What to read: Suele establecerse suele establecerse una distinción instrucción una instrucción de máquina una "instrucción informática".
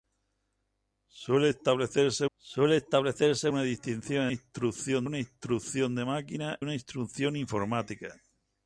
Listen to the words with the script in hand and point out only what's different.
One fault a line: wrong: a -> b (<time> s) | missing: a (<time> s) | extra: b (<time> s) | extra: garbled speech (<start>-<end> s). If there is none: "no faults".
no faults